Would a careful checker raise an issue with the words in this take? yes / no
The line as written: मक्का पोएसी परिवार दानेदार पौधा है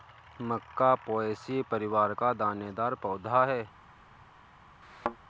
yes